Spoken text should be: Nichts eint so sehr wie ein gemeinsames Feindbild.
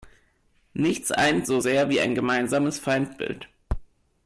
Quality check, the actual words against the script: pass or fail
pass